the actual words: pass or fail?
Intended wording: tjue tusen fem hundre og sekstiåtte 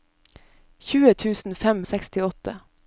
fail